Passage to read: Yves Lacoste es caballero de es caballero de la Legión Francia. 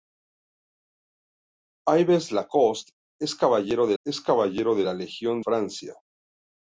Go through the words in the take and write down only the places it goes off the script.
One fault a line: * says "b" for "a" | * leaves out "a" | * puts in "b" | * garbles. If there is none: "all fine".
all fine